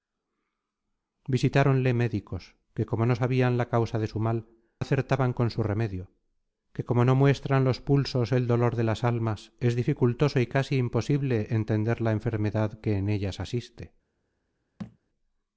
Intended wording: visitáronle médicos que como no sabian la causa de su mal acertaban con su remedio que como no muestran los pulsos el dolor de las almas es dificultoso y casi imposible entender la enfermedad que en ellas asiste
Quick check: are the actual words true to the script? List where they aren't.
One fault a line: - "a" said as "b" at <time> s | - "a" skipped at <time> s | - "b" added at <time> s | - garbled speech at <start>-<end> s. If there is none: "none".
none